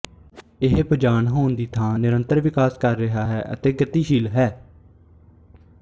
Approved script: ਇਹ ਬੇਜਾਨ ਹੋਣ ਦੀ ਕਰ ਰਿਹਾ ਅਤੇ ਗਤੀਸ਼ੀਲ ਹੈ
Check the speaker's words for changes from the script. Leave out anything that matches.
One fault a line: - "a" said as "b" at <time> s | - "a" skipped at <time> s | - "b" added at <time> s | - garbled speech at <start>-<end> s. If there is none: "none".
- "ਥਾਂ ਨਿਰੰਤਰ ਵਿਕਾਸ" added at 1.7 s
- "ਹੈ" added at 3.2 s